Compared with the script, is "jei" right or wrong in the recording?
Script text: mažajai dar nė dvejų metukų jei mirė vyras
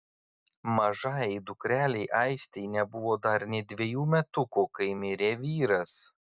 wrong